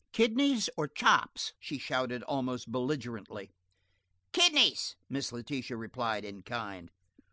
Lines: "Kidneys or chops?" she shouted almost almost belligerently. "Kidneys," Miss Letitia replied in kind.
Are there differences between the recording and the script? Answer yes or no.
yes